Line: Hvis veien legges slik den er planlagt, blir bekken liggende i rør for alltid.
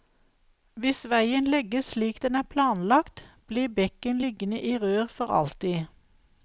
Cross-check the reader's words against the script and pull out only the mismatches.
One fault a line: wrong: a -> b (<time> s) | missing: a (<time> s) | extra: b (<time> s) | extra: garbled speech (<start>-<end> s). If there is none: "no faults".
no faults